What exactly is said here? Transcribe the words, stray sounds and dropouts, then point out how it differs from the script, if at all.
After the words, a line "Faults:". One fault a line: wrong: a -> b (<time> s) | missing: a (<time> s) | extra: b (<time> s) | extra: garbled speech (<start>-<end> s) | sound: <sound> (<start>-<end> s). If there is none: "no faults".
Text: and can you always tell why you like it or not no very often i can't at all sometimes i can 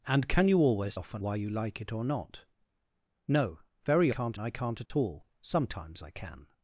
and can you always often why you like it or not no very can't i can't at all sometimes i can
Faults:
wrong: tell -> often (0.9 s)
wrong: often -> can't (4.1 s)
sound: dropout (4.9-4.9 s)